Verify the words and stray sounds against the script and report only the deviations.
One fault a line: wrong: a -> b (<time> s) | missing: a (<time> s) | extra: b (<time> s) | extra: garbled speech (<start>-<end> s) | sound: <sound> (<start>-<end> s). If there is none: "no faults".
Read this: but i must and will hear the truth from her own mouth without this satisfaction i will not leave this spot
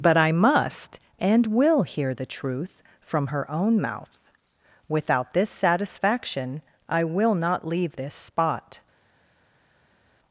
no faults